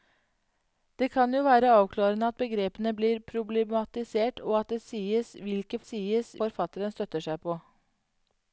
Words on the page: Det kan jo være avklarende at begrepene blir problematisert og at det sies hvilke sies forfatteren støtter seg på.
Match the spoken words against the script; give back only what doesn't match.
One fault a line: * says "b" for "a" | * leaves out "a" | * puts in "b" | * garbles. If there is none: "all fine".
all fine